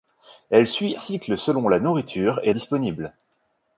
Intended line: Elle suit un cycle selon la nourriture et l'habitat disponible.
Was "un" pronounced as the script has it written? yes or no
no